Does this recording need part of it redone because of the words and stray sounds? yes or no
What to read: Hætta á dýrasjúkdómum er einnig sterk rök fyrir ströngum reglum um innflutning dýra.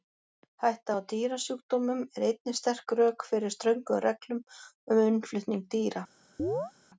yes